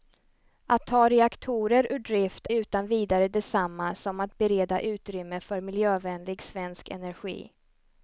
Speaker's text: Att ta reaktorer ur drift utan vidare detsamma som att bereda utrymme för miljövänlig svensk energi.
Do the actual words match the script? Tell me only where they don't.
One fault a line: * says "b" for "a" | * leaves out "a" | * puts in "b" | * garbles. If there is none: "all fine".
all fine